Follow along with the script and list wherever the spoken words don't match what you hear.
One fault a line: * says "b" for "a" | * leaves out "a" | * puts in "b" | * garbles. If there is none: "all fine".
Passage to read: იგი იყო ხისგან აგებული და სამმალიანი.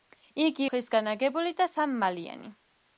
* leaves out "იყო"